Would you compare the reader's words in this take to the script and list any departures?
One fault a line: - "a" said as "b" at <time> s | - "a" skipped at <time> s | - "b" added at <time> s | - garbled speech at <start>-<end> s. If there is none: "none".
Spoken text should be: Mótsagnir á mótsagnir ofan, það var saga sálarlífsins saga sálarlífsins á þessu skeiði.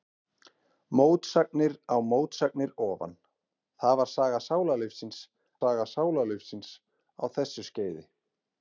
none